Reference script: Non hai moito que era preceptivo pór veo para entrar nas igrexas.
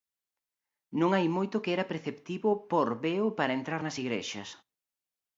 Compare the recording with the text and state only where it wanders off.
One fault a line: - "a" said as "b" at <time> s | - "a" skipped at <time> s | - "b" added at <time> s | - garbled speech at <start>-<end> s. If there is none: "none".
none